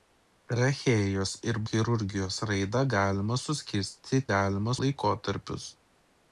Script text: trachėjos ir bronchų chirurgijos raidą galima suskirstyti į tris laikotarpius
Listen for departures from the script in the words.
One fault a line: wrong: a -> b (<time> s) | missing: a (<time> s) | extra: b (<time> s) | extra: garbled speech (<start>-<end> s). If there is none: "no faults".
missing: bronchų (1.6 s)
wrong: tris -> galima (4.3 s)